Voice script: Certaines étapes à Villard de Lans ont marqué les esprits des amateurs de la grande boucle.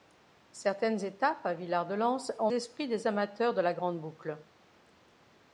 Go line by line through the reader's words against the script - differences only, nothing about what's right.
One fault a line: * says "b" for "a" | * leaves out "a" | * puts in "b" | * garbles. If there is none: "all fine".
* leaves out "marqué les"